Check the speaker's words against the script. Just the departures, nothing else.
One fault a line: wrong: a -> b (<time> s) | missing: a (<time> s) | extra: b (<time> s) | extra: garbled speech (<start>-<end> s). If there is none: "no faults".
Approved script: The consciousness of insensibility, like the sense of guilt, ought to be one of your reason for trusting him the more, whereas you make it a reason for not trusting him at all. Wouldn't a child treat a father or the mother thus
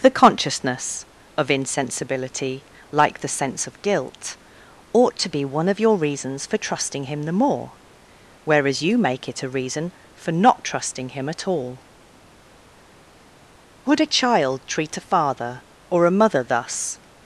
wrong: reason -> reasons (6.0 s)
wrong: Wouldn't -> Would (13.8 s)
wrong: the -> a (16.1 s)